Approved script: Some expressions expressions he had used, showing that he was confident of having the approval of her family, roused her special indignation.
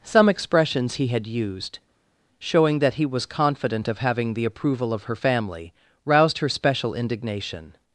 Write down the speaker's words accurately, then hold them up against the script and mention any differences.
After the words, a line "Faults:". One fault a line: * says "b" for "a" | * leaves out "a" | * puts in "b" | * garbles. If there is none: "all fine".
Some expressions he had used, showing that he was confident of having the approval of her family, roused her special indignation.
Faults:
* leaves out "expressions"